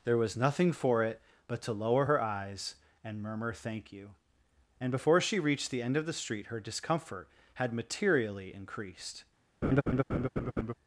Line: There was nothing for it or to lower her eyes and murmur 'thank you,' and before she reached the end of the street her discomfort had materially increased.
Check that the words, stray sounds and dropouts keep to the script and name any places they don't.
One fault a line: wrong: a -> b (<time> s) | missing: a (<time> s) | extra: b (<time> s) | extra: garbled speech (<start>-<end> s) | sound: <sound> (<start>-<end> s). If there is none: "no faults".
wrong: or -> but (1.5 s)
sound: laugh (9.6-10.7 s)